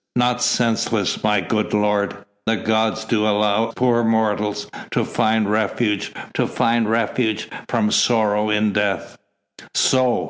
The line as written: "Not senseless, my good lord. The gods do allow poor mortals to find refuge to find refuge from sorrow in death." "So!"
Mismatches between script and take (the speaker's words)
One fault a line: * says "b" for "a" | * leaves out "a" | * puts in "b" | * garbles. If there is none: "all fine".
all fine